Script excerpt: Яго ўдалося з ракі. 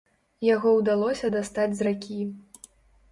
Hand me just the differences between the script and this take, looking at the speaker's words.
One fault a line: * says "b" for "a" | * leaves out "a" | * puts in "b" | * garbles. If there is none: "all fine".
* puts in "дастаць"